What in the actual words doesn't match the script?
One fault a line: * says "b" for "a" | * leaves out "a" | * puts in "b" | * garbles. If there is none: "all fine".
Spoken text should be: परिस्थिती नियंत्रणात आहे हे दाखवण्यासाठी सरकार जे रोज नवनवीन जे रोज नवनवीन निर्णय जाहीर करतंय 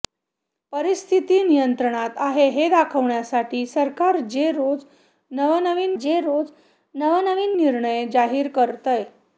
all fine